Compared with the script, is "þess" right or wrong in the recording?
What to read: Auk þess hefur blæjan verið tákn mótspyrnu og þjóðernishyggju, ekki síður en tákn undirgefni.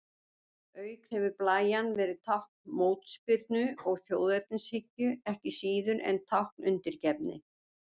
wrong